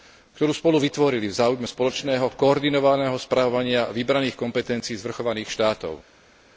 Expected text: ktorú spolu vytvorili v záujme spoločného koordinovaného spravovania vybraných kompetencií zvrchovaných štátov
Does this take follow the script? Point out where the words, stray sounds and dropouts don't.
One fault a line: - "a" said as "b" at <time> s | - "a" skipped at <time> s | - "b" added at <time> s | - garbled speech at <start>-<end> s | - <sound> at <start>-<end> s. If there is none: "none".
none